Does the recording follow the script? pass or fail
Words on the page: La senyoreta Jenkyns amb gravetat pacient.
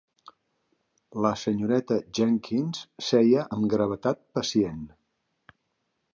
fail